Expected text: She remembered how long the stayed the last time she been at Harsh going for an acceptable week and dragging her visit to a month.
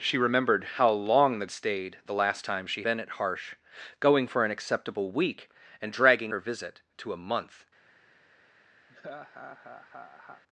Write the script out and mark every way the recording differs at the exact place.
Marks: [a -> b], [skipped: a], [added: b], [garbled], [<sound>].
She remembered how long the stayed the last time she been at Harsh going for an acceptable week and dragging her visit to a month. [laugh]